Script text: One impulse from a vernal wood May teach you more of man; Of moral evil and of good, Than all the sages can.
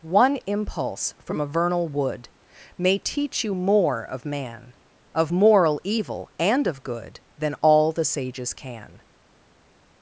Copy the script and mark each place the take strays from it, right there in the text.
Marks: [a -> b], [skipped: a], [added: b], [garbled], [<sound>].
One impulse from a vernal wood May teach you more of man; Of moral evil and of good, Than all the sages can.